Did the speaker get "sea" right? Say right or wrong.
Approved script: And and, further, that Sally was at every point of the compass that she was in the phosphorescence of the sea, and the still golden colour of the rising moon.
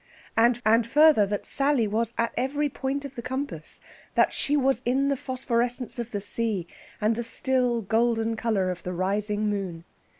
right